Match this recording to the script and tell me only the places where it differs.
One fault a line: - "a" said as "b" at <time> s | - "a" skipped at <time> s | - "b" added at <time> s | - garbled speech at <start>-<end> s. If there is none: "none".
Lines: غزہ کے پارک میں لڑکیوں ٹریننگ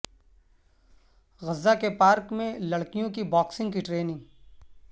- "کی باکسنگ کی" added at 3.1 s